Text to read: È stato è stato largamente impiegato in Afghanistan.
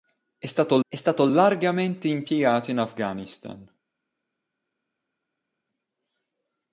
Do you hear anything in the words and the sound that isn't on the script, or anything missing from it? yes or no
no